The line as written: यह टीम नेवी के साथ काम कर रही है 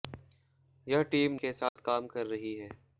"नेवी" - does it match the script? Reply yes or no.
no